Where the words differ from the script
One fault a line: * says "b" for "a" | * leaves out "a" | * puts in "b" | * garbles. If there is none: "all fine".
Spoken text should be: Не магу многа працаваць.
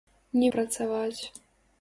* leaves out "магу многа"